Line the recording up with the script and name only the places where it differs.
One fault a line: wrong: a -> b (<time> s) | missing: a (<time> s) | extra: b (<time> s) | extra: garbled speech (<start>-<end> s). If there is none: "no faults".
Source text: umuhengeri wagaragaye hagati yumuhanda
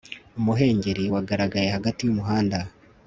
no faults